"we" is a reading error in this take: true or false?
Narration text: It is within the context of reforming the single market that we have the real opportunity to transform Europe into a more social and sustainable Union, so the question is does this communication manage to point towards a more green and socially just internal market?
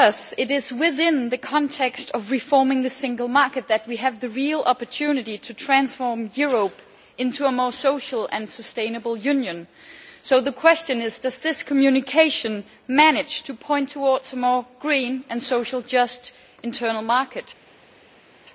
false